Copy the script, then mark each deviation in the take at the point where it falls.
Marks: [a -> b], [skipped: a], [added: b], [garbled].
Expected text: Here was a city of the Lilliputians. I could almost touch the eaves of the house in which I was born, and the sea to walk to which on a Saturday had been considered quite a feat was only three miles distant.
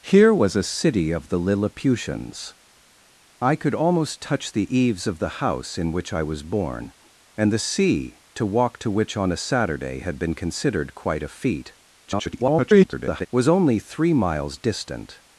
Here was a city of the Lilliputians. I could almost touch the eaves of the house in which I was born, and the sea to walk to which on a Saturday had been considered quite a feat [garbled] was only three miles distant.